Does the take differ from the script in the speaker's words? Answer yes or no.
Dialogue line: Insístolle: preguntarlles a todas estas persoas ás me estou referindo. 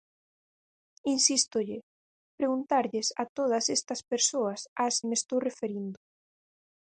no